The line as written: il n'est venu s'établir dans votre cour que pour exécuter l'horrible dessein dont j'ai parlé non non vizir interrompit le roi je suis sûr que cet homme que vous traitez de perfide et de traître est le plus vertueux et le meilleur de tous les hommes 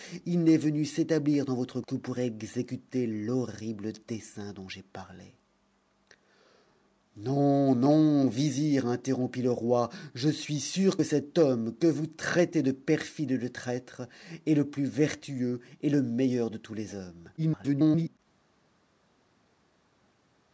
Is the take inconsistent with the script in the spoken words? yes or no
yes